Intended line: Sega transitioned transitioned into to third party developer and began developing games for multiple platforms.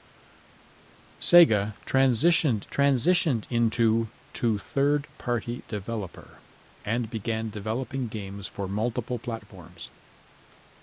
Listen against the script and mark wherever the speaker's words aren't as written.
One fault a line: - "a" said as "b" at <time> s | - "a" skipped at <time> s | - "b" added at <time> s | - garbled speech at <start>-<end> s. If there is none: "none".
none